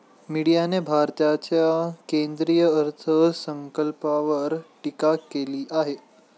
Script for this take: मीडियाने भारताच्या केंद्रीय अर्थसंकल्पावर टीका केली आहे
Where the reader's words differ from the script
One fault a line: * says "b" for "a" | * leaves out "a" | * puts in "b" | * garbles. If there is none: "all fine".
all fine